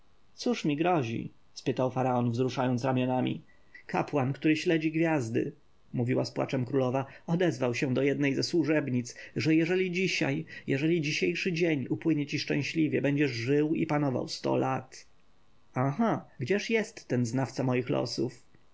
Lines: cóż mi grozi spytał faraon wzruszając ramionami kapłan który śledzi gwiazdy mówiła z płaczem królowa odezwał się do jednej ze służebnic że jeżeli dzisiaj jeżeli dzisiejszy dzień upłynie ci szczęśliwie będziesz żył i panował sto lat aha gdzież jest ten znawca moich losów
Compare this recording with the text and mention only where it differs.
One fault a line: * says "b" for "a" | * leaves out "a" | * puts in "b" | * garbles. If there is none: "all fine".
all fine